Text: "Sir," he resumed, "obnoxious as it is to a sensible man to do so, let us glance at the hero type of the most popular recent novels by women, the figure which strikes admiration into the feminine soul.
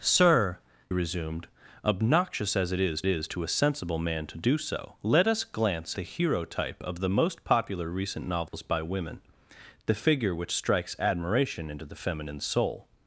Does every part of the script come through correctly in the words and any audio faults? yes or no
no